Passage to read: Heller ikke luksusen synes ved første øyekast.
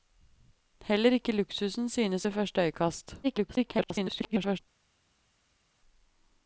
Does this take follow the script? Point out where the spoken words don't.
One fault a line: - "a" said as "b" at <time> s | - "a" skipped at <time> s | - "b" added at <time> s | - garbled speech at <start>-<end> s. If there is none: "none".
- garbled speech at 3.2-4.6 s